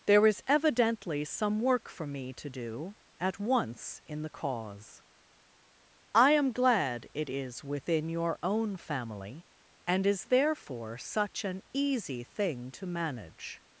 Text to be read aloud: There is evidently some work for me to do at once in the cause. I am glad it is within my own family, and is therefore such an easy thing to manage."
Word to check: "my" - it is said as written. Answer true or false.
false